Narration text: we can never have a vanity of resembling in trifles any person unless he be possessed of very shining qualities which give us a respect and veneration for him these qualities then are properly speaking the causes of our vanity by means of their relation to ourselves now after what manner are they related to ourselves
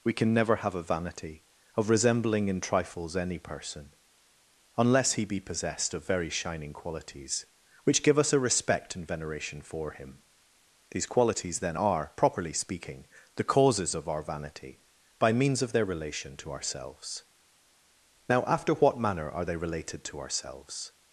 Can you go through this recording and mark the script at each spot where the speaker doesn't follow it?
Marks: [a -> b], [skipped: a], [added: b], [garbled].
we can never have a vanity of resembling in trifles any person unless he be possessed of very shining qualities which give us a respect and veneration for him these qualities then are properly speaking the causes of our vanity by means of their relation to ourselves now after what manner are they related to ourselves